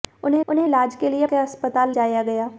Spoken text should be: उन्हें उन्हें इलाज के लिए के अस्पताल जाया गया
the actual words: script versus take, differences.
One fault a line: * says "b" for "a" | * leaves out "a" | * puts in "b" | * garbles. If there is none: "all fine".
all fine